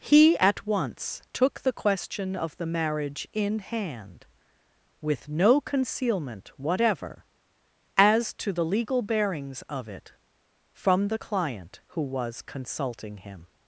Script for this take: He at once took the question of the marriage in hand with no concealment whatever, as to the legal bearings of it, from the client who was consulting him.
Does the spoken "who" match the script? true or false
true